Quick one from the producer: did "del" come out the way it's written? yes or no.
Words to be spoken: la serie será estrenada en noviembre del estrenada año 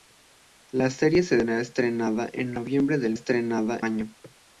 yes